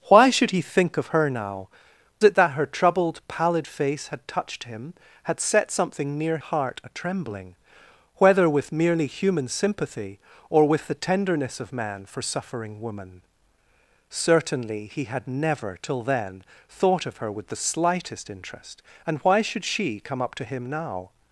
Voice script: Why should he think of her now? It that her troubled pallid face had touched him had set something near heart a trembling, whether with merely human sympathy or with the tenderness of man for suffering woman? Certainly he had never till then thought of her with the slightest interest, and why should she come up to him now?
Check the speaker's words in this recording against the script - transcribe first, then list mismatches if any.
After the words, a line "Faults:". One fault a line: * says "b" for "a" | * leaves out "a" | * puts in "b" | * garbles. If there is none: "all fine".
Why should he think of her now? It that her troubled pallid face had touched him had set something near heart a trembling, whether with merely human sympathy or with the tenderness of man for suffering woman? Certainly he had never till then thought of her with the slightest interest, and why should she come up to him now?
Faults:
all fine